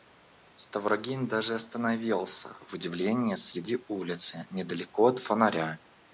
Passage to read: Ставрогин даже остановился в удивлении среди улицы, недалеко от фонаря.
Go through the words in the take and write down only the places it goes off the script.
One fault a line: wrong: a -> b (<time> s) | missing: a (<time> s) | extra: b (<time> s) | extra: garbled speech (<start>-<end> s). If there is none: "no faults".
no faults